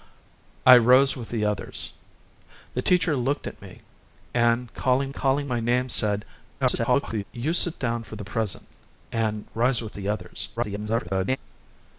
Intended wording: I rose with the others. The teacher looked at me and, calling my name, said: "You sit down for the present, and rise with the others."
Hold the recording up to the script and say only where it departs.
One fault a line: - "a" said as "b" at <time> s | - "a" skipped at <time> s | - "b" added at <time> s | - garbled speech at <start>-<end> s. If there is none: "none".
- "calling" added at 5.1 s
- garbled speech at 6.6-7.2 s
- garbled speech at 10.6-11.4 s